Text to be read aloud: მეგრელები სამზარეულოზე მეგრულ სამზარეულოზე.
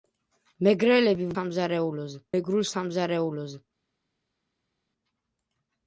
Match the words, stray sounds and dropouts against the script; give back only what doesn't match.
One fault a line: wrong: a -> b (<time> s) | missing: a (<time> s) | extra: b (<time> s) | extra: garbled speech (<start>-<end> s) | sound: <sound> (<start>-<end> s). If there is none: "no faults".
no faults